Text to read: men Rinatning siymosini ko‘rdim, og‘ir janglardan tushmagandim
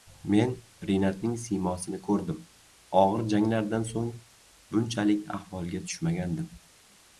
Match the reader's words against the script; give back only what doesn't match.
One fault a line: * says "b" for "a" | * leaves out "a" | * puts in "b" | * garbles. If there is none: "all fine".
* puts in "so‘ng bunchalik ahvolga"